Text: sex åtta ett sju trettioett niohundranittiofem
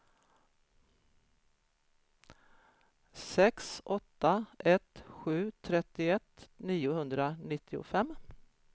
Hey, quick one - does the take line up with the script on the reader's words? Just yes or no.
yes